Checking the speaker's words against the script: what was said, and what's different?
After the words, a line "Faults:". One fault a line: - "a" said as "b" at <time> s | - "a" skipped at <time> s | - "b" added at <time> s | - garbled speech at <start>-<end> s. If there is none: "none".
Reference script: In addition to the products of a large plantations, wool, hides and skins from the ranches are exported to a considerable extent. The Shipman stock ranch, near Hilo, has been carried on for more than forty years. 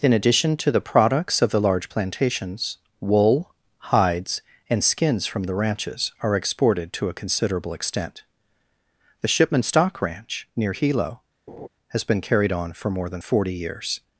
In addition to the products of the large plantations, wool, hides and skins from the ranches are exported to a considerable extent. The Shipman stock ranch, near Hilo, has been carried on for more than forty years.
Faults:
- "a" said as "the" at 1.5 s